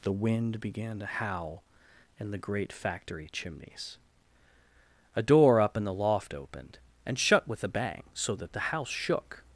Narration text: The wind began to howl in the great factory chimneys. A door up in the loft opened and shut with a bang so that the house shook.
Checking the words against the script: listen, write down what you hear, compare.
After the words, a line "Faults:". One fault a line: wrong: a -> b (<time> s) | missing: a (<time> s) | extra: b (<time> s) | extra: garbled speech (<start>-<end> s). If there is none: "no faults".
The wind began to howl in the great factory chimneys. A door up in the loft opened and shut with a bang so that the house shook.
Faults:
no faults